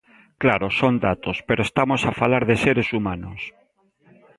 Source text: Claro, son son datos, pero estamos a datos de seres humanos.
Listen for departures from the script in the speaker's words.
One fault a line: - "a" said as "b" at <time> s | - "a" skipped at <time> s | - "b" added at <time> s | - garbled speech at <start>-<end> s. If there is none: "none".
- "son" skipped at 1.0 s
- "datos" said as "falar" at 2.1 s